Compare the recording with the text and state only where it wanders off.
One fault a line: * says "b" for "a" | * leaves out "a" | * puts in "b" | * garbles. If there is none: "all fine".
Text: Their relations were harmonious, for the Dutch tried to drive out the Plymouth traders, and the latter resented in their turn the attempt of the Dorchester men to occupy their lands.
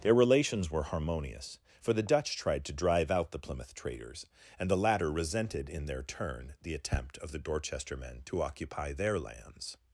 all fine